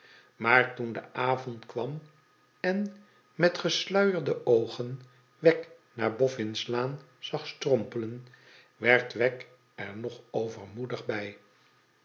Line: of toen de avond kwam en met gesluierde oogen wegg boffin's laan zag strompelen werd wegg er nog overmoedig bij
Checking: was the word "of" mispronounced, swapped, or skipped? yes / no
yes